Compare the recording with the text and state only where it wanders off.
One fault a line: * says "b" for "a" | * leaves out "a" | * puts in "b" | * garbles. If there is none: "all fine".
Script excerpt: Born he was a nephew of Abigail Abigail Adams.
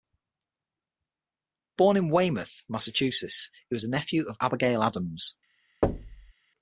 * puts in "in Weymouth Massachusetts"
* leaves out "Abigail"